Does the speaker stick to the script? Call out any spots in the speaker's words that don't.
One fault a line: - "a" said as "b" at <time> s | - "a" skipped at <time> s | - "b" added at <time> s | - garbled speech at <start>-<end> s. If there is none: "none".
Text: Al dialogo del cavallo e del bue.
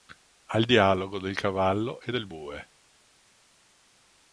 none